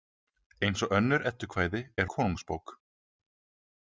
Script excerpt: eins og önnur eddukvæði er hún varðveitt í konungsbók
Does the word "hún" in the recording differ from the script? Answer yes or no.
yes